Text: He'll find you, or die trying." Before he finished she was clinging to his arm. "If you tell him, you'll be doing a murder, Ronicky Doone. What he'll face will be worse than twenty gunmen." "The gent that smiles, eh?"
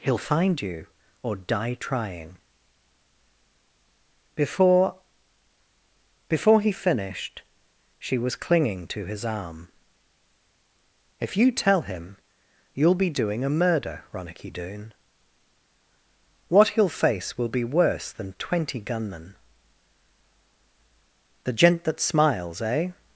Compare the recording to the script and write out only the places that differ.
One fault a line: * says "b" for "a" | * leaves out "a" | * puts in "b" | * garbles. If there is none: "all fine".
* puts in "Before"